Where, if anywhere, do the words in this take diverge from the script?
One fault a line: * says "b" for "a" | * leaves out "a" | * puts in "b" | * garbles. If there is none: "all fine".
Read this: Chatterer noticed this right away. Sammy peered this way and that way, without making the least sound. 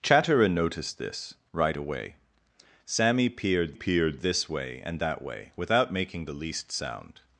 * puts in "peered"